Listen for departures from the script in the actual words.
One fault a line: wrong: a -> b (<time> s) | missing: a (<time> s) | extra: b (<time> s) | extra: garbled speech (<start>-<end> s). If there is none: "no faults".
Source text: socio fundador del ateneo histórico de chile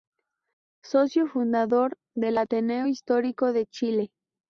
no faults